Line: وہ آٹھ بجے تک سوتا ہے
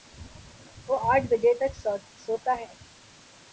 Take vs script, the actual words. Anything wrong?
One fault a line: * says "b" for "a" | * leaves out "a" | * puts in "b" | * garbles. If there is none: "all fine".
all fine